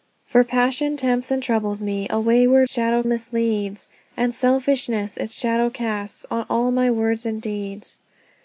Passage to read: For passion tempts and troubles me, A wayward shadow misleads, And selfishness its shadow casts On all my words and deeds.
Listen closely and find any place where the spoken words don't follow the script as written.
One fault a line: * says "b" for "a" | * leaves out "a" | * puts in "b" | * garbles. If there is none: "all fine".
all fine